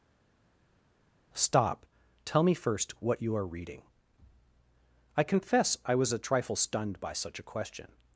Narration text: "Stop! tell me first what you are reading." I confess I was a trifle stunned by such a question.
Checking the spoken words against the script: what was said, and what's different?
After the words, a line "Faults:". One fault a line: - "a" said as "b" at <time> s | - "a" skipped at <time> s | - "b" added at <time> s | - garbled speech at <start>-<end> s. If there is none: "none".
"Stop! tell me first what you are reading." I confess I was a trifle stunned by such a question.
Faults:
none